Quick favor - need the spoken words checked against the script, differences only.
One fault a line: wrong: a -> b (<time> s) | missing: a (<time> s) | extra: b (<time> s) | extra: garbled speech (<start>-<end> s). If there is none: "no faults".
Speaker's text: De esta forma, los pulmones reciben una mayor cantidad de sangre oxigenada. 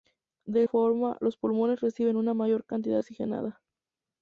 missing: esta (0.6 s)
missing: de sangre (3.0 s)